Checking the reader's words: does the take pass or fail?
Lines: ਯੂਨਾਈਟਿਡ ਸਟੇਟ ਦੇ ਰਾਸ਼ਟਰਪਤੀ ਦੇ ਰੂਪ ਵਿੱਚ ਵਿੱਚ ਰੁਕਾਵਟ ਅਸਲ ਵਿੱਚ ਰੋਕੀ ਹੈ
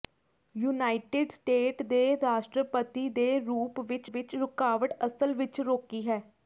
pass